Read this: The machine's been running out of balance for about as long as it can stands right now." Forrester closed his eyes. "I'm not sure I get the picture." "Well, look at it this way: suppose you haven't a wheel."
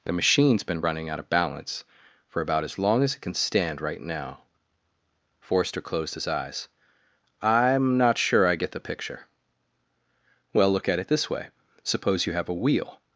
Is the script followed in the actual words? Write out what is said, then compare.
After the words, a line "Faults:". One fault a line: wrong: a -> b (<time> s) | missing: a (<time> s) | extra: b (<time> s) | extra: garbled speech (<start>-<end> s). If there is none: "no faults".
The machine's been running out of balance for about as long as it can stand right now." Forrester closed his eyes. "I'm not sure I get the picture." "Well, look at it this way: suppose you have a wheel."
Faults:
wrong: stands -> stand (3.3 s)
wrong: haven't -> have (12.3 s)